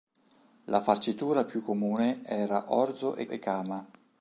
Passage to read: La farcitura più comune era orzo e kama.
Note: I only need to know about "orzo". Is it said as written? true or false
true